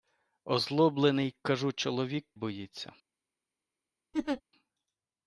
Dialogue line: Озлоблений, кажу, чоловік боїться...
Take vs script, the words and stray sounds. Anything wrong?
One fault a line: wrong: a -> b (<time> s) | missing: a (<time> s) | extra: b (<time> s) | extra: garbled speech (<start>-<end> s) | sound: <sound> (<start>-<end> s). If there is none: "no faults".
sound: laugh (4.1-4.4 s)